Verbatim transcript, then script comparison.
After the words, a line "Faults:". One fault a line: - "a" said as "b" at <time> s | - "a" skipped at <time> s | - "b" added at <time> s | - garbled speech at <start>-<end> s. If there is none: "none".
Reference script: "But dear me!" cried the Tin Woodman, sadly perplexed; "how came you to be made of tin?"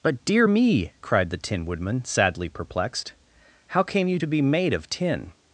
"But dear me!" cried the Tin Woodman, sadly perplexed; "how came you to be made of tin?"
Faults:
none